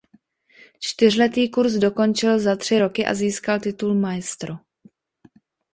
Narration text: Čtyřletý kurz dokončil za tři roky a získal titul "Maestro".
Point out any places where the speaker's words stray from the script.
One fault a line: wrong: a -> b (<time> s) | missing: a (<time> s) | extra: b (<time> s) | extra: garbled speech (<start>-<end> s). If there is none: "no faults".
no faults